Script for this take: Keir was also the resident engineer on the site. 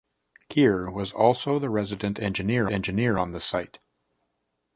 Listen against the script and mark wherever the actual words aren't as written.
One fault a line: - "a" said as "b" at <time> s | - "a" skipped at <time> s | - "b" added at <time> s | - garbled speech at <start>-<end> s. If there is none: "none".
- "engineer" added at 2.7 s